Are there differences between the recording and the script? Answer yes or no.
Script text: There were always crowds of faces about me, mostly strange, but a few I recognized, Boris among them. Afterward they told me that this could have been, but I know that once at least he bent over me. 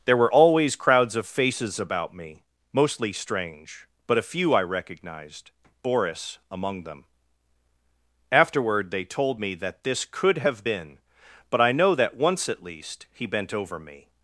no